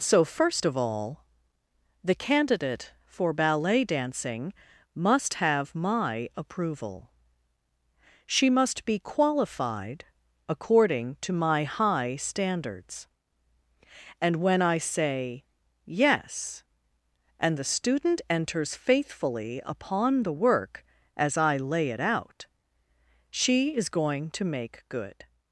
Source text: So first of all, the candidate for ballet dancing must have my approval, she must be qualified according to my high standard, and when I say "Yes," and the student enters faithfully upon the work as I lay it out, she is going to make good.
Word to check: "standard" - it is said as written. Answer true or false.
false